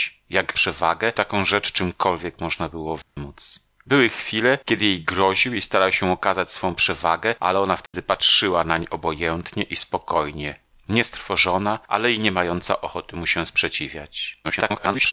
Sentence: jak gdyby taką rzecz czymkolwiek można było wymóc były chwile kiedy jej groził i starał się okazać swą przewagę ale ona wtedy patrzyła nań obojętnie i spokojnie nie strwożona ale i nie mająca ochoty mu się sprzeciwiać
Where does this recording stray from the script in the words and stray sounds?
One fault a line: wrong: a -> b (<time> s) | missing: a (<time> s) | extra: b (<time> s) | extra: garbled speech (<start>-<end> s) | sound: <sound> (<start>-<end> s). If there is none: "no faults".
wrong: gdyby -> przewagę (0.5 s)
sound: dropout (3.0-3.2 s)
sound: dropout (7.9-7.9 s)
extra: garbled speech (14.4-15.1 s)